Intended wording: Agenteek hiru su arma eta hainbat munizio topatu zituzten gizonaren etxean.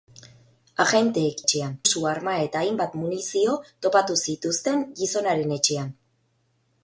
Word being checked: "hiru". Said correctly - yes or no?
no